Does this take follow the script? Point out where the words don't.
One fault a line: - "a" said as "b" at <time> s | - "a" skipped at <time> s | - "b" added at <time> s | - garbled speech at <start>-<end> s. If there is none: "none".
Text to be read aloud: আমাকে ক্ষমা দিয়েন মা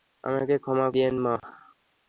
none